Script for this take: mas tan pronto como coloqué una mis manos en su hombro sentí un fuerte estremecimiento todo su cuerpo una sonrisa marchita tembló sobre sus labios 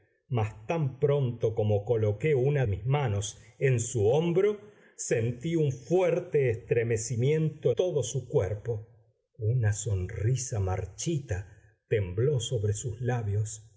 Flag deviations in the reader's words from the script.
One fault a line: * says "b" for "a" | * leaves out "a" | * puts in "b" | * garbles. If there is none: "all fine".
all fine